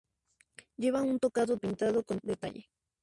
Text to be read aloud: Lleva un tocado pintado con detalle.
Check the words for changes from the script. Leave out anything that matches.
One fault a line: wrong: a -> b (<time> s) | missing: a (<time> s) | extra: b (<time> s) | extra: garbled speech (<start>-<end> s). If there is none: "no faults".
no faults